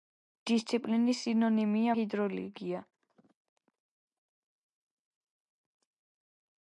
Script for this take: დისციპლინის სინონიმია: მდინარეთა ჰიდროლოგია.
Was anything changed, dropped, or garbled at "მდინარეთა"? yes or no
yes